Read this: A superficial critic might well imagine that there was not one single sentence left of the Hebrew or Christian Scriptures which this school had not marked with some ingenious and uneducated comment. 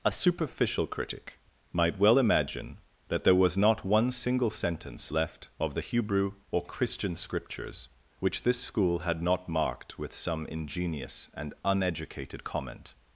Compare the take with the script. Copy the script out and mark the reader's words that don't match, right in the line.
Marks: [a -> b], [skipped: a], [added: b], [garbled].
A superficial critic might well imagine that there was not one single sentence left of the Hebrew or Christian Scriptures which this school had not marked with some ingenious and uneducated comment.